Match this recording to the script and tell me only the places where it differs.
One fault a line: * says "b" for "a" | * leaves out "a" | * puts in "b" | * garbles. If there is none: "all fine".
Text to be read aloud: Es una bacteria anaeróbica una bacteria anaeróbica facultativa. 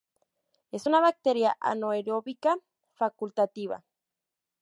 * leaves out "una bacteria anaeróbica"